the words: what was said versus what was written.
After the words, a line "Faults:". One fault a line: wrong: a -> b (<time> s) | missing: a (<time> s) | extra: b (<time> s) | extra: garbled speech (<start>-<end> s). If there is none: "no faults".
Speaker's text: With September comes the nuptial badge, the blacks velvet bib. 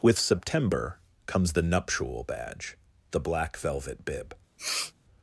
With September comes the nuptial badge, the black velvet bib.
Faults:
wrong: blacks -> black (3.2 s)